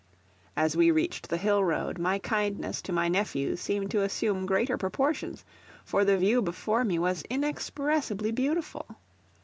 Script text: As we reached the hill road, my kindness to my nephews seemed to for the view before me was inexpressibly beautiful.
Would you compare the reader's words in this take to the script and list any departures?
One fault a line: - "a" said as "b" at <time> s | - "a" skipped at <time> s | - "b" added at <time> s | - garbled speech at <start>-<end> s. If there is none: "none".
- "assume greater proportions" added at 4.0 s